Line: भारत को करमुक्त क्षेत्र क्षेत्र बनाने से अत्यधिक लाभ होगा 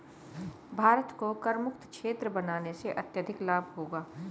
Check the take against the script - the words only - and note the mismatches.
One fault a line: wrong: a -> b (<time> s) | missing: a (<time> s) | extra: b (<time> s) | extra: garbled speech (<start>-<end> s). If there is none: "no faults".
missing: क्षेत्र (2.3 s)